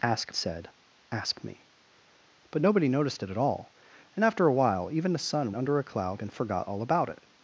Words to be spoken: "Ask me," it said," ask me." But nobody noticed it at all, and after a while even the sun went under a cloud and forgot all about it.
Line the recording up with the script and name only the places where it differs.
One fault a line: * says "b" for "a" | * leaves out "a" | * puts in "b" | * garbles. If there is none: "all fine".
* leaves out "me it"
* leaves out "went"